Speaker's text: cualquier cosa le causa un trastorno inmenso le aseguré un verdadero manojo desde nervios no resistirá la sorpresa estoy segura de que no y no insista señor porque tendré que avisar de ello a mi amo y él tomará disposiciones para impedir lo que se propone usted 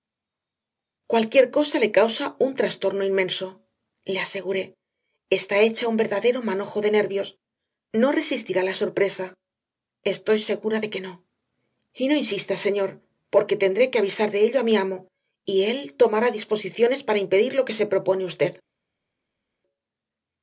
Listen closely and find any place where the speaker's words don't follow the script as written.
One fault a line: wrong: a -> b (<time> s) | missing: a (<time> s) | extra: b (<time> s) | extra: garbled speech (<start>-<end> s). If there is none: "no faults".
extra: está hecha (5.4 s)
wrong: desde -> de (6.8 s)